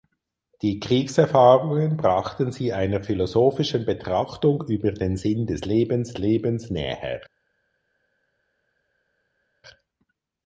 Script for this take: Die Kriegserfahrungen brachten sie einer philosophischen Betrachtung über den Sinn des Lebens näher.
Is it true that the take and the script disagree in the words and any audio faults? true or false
true